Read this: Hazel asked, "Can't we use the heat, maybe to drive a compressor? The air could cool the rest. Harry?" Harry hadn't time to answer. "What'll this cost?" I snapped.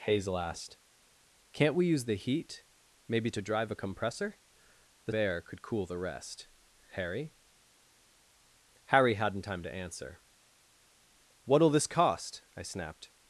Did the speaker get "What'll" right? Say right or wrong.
right